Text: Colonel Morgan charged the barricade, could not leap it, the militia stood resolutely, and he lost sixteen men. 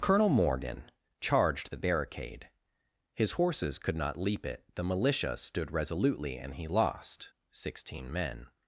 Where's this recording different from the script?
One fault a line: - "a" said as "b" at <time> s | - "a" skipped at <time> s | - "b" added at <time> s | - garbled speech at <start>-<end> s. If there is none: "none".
- "his horses" added at 3.1 s